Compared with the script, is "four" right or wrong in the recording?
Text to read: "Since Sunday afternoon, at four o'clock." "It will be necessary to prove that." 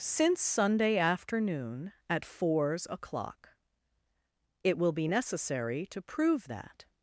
wrong